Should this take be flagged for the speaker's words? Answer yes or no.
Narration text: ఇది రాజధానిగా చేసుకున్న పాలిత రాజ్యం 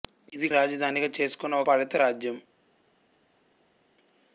no